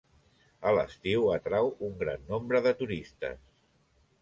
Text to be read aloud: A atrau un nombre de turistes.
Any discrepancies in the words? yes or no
yes